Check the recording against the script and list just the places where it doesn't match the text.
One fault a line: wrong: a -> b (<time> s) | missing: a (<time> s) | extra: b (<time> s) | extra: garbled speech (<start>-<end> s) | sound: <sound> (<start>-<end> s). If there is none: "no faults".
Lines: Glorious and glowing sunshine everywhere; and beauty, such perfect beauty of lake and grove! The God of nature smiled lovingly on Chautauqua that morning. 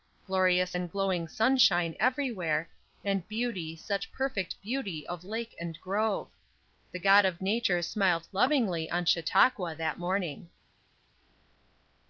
no faults